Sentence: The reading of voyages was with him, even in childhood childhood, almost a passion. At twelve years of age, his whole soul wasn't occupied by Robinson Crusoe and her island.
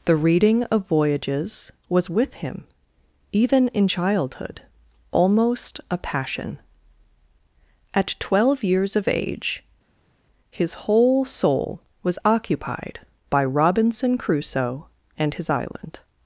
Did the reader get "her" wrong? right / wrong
wrong